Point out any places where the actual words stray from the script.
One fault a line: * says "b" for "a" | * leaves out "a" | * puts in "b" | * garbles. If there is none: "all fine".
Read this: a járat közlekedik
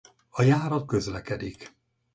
all fine